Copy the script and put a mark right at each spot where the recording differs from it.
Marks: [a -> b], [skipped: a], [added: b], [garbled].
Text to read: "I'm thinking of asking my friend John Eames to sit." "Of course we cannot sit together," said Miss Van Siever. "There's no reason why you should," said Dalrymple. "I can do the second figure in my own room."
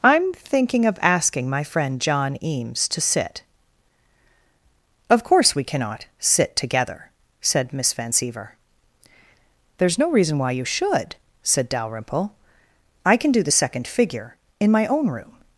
"I'm thinking of asking my friend John Eames to sit." "Of course we cannot sit together," said Miss Van Siever. "There's no reason why you should," said Dalrymple. "I can do the second figure in my own room."